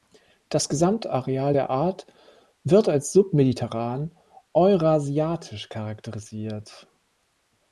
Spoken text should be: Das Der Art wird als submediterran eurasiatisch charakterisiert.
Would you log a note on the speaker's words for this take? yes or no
yes